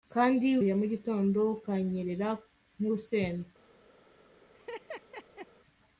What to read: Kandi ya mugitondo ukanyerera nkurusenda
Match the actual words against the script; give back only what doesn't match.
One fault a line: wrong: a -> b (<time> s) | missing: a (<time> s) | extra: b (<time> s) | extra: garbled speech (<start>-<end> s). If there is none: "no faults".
no faults